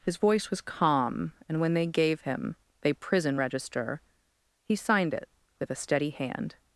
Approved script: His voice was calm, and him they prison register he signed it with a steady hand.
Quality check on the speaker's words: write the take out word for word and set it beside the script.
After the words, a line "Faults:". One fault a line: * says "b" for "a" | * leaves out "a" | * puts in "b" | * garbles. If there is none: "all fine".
His voice was calm, and when they gave him they prison register he signed it with a steady hand.
Faults:
* puts in "when they gave"